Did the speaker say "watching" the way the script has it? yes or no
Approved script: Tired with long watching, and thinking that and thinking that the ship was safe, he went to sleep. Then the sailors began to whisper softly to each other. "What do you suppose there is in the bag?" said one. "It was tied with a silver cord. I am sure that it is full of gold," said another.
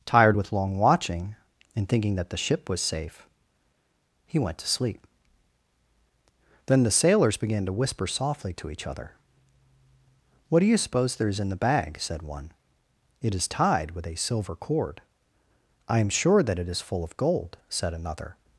yes